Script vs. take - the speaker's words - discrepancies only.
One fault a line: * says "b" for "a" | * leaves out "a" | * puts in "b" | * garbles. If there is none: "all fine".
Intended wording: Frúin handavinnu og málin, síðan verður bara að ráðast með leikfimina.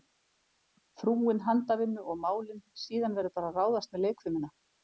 all fine